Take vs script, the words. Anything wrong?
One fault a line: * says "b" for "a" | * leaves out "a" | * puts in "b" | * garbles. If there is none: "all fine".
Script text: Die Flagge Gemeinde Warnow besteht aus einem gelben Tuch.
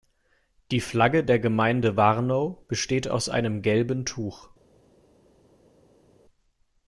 * puts in "der"